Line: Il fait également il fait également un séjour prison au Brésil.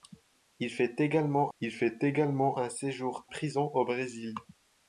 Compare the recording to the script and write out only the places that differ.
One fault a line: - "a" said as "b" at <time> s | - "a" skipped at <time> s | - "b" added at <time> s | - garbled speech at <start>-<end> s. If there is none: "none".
none